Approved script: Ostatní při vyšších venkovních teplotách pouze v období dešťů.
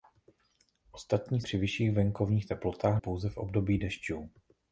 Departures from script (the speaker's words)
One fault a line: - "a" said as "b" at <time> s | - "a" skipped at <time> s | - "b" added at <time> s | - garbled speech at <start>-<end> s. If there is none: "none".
none